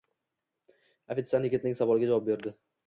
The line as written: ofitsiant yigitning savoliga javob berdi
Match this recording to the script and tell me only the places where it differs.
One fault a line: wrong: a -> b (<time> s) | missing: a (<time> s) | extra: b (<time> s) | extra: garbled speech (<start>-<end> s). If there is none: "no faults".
no faults